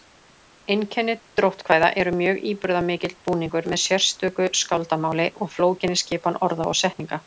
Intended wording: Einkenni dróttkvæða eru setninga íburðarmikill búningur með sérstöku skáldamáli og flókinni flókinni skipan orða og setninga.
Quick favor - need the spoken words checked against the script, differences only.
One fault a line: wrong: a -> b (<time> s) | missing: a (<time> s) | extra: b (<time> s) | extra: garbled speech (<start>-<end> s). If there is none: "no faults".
wrong: setninga -> mjög (2.2 s)
missing: flókinni (6.0 s)